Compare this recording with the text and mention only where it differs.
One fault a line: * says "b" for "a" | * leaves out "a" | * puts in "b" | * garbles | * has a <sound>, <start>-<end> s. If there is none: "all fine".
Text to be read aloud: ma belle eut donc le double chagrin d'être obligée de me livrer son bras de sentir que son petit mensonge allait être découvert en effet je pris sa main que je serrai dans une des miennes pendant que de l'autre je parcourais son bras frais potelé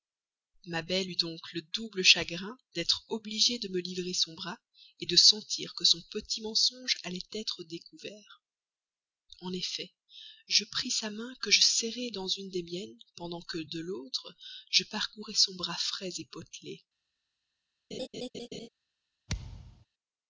* has a laugh, 17.9-18.7 s
* has a thud, 19.3-19.9 s